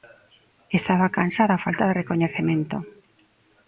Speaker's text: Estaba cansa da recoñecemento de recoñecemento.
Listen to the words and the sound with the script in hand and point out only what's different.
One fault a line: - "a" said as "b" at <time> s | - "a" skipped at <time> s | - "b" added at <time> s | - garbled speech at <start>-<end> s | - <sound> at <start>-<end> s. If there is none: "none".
- "recoñecemento" said as "falta" at 1.6 s